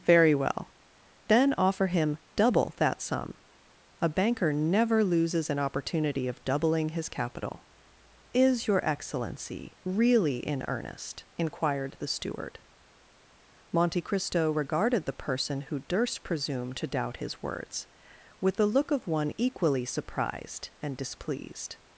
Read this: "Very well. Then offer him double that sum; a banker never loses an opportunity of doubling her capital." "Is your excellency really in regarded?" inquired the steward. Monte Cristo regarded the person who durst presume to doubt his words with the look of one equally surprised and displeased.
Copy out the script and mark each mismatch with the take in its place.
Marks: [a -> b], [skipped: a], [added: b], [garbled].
"Very well. Then offer him double that sum; a banker never loses an opportunity of doubling [her -> his] capital." "Is your excellency really in [regarded?" -> earnest] inquired the steward. Monte Cristo regarded the person who durst presume to doubt his words with the look of one equally surprised and displeased.